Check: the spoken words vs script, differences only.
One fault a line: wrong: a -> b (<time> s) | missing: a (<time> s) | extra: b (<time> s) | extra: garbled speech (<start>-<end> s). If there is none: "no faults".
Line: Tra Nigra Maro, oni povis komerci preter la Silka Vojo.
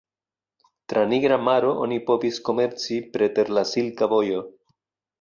no faults